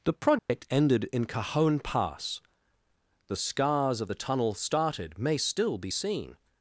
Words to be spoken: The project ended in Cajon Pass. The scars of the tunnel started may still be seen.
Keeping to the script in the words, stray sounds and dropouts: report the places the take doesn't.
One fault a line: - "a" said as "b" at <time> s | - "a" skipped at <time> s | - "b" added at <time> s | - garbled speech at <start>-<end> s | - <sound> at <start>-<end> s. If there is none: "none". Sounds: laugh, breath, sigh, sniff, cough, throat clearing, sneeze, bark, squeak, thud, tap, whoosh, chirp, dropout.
- dropout at 0.4-0.5 s